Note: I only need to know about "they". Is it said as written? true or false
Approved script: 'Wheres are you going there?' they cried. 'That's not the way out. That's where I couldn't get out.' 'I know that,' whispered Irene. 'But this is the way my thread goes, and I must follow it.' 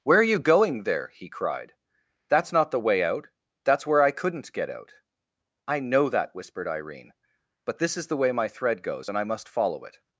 false